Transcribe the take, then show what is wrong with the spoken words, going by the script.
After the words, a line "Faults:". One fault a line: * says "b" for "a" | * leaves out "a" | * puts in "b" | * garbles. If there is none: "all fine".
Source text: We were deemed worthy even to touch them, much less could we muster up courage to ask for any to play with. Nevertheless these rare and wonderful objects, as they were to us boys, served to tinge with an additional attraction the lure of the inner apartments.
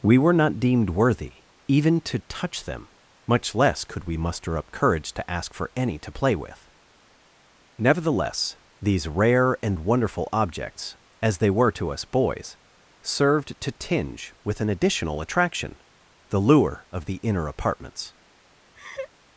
We were not deemed worthy even to touch them, much less could we muster up courage to ask for any to play with. Nevertheless these rare and wonderful objects, as they were to us boys, served to tinge with an additional attraction the lure of the inner apartments.
Faults:
* puts in "not"